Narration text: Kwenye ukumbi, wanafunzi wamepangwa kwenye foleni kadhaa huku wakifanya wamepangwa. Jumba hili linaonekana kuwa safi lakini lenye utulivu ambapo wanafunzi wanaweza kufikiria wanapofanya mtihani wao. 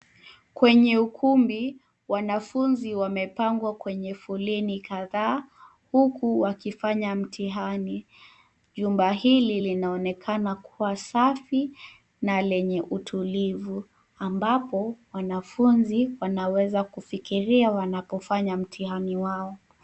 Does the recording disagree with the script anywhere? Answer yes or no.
yes